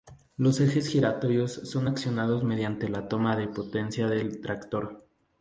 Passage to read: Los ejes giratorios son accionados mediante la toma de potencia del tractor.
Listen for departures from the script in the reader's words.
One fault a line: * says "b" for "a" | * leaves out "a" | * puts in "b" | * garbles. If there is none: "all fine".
all fine